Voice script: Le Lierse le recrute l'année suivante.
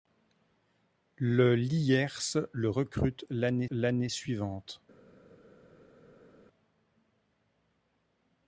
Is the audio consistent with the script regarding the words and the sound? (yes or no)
no